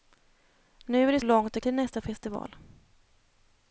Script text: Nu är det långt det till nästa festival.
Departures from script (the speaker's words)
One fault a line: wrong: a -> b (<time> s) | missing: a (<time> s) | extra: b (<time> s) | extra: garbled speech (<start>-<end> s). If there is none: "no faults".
no faults